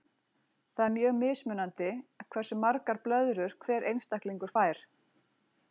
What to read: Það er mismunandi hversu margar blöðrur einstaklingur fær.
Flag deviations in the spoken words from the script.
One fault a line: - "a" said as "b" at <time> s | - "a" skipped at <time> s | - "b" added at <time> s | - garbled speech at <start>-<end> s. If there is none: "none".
- "mjög" added at 0.9 s
- "hver" added at 3.7 s